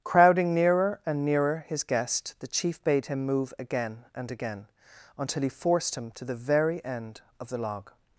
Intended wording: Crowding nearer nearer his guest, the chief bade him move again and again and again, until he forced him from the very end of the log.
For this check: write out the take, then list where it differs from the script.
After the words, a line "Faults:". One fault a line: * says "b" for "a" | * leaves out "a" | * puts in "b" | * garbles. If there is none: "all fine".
Crowding nearer and nearer his guest, the chief bade him move again and again, until he forced him to the very end of the log.
Faults:
* puts in "and"
* leaves out "and again"
* says "to" for "from"